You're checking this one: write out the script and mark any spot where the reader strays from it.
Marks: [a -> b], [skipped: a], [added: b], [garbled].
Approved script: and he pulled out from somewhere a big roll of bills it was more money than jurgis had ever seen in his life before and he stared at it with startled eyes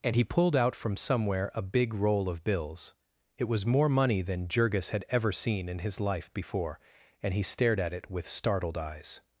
and he pulled out from somewhere a big roll of bills it was more money than jurgis had ever seen in his life before and he stared at it with startled eyes